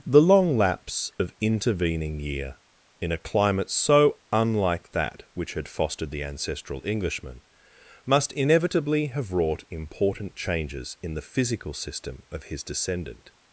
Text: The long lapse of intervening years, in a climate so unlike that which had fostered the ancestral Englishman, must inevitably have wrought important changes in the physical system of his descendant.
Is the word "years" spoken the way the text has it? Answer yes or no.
no